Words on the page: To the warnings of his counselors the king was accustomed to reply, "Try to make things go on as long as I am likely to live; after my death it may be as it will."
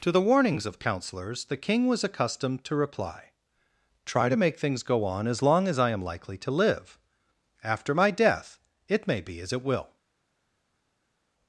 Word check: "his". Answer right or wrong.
wrong